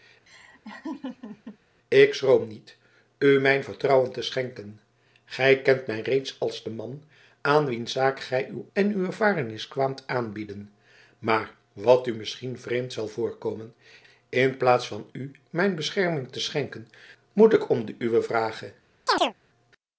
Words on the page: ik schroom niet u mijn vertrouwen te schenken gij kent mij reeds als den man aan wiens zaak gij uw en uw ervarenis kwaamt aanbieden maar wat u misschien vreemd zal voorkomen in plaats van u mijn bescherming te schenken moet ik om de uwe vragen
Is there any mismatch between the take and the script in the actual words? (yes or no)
no